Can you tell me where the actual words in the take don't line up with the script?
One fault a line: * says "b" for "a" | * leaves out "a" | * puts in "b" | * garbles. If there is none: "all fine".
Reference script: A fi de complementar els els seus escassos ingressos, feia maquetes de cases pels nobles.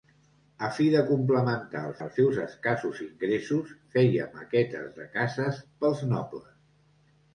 all fine